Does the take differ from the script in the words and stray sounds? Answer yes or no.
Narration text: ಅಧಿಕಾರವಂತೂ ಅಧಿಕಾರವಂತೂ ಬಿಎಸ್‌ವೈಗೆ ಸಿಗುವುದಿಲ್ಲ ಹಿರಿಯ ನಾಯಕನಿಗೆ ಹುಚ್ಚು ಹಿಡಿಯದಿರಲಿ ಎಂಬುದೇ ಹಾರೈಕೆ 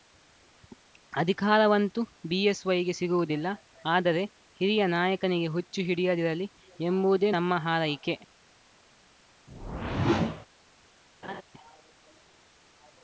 yes